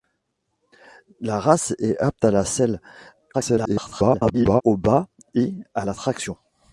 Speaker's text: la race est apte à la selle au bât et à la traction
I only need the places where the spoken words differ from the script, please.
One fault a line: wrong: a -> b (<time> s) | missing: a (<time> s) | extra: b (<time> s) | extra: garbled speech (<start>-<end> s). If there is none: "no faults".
extra: garbled speech (3.3-4.6 s)